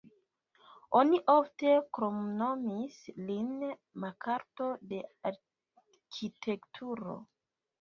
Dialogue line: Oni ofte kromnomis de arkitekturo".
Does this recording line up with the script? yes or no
no